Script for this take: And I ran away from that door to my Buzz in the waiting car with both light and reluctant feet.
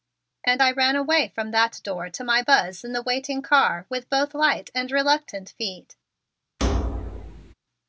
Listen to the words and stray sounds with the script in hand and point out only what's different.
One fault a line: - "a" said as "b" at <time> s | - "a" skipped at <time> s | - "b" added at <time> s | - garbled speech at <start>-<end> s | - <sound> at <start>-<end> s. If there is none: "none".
- thud at 6.6-7.5 s